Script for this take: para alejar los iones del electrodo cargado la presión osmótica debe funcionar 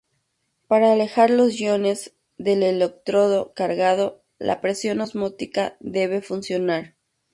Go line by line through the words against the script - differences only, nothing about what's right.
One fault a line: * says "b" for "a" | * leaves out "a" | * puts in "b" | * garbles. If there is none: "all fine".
all fine